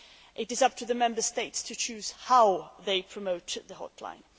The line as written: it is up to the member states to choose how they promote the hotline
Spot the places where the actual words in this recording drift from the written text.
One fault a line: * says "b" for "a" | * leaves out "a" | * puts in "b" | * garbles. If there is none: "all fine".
all fine